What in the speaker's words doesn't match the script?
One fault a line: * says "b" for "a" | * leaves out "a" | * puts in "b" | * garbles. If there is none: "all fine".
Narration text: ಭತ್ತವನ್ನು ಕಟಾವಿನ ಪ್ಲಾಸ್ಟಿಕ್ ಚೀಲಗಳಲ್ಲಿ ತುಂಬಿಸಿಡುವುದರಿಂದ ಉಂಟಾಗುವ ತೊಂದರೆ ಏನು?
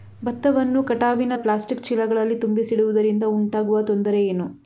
all fine